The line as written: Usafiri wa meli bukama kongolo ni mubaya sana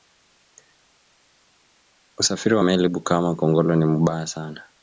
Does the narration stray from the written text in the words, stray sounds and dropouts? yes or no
no